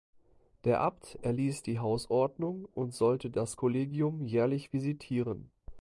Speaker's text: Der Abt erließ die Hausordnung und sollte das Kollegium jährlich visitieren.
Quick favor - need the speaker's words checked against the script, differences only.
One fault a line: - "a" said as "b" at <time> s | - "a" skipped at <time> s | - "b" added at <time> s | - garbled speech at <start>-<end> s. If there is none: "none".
none